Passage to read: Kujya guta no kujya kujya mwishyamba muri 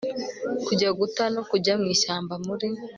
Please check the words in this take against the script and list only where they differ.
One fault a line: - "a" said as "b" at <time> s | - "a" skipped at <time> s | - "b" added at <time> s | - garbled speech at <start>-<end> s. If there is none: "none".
- "kujya" skipped at 1.7 s